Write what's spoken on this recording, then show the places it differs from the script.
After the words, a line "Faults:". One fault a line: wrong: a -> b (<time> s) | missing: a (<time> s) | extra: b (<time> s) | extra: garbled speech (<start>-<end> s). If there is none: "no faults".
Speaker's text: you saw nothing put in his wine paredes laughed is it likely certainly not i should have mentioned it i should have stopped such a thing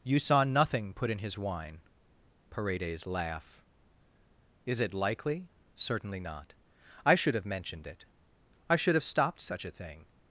you saw nothing put in his wine paredes laugh is it likely certainly not i should have mentioned it i should have stopped such a thing
Faults:
wrong: laughed -> laugh (3.0 s)